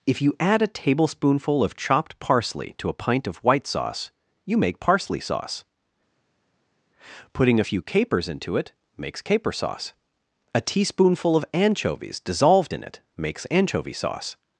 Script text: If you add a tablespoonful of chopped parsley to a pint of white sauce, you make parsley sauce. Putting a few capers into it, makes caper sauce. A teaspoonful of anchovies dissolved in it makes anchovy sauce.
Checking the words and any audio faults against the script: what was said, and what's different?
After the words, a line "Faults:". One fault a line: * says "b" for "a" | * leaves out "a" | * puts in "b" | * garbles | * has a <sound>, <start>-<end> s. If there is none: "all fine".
If you add a tablespoonful of chopped parsley to a pint of white sauce, you make parsley sauce. Putting a few capers into it, makes caper sauce. A teaspoonful of anchovies dissolved in it makes anchovy sauce.
Faults:
all fine